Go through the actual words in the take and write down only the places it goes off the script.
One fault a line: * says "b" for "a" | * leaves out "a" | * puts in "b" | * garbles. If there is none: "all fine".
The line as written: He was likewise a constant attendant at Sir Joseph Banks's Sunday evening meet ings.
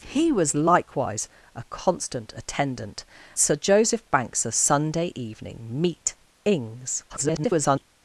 * leaves out "at"
* garbles